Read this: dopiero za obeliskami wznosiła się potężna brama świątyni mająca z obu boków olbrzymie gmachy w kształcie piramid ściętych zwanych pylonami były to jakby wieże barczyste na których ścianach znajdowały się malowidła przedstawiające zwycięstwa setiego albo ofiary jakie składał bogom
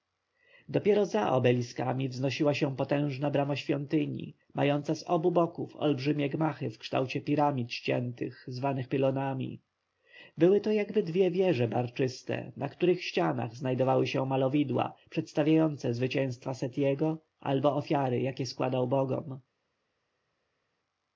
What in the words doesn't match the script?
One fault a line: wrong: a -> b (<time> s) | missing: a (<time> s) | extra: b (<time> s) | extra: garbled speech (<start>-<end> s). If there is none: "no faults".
extra: dwie (11.0 s)